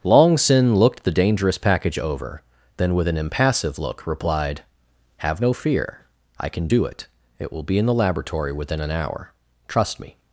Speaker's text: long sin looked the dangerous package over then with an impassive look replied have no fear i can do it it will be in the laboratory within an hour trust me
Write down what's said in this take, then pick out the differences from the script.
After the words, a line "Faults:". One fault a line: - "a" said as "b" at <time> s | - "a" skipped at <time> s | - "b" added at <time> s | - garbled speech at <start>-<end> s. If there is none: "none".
long sin looked the dangerous package over then with an impassive look replied have no fear i can do it it will be in the laboratory within an hour trust me
Faults:
none